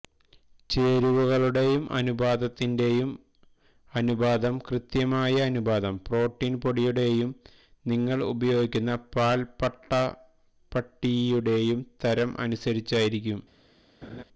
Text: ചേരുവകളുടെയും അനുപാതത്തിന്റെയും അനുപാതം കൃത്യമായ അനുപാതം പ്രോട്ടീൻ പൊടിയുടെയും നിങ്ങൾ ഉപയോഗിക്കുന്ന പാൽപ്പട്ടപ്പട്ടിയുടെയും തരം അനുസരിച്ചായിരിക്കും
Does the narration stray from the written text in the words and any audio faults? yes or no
yes